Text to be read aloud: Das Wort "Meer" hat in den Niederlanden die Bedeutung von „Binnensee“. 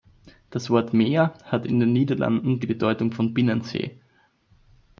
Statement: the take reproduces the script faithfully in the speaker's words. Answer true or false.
true